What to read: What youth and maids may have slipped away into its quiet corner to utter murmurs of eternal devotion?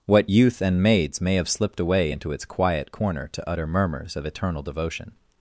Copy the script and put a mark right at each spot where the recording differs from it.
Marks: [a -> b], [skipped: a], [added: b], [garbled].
What youth and maids may have slipped away into its quiet corner to utter murmurs of eternal devotion?